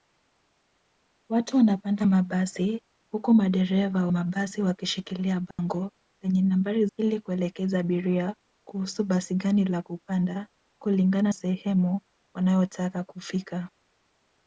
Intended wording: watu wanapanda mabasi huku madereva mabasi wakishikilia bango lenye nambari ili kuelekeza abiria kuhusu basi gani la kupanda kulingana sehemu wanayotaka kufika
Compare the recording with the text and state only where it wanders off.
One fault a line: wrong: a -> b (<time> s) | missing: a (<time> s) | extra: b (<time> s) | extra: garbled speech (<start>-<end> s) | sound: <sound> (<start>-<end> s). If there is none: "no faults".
sound: dropout (5.5-5.6 s)